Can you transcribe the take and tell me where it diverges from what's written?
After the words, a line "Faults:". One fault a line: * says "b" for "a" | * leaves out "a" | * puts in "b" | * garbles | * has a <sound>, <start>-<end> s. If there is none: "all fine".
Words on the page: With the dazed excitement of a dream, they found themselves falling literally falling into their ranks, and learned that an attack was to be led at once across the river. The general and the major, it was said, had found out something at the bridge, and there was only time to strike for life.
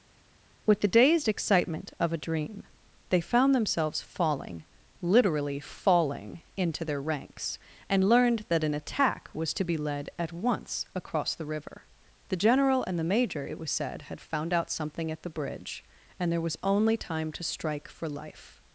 With the dazed excitement of a dream, they found themselves falling literally falling into their ranks, and learned that an attack was to be led at once across the river. The general and the major, it was said, had found out something at the bridge, and there was only time to strike for life.
Faults:
all fine